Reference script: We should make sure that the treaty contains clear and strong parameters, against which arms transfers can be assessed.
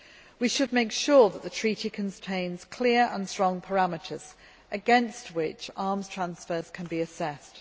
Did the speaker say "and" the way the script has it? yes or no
yes